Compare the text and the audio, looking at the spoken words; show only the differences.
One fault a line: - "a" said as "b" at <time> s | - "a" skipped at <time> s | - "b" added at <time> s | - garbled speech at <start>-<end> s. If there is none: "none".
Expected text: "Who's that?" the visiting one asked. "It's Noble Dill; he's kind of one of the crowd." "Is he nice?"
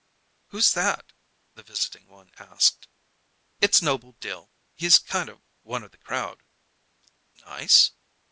- "Is he" skipped at 6.4 s